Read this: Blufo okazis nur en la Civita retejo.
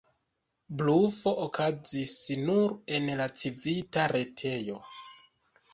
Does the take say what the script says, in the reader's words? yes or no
yes